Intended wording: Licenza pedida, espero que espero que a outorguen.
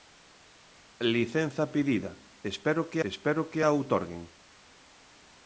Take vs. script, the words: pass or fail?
pass